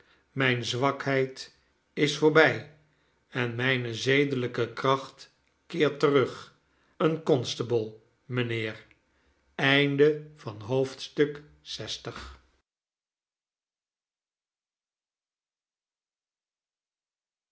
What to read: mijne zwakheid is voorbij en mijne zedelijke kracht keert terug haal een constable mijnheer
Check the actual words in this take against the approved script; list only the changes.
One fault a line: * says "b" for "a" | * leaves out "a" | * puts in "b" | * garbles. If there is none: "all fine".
* leaves out "haal"